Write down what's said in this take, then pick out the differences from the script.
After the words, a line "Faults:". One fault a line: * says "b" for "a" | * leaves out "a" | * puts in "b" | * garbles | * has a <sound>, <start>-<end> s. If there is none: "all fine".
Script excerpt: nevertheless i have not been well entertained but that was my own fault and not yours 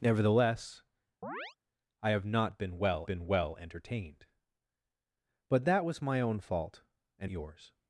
nevertheless i have not been well been well entertained but that was my own fault and yours
Faults:
* has a chirp, 1.2-1.6 s
* puts in "been well"
* leaves out "not"